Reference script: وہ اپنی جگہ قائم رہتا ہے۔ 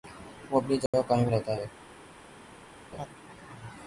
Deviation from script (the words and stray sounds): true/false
true